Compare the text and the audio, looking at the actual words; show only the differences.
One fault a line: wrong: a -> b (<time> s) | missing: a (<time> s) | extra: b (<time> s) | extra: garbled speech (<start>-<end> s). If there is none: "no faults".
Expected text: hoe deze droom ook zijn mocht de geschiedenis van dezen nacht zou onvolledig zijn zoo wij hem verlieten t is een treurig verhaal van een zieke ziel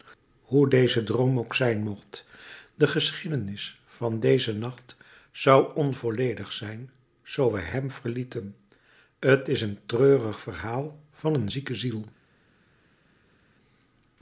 no faults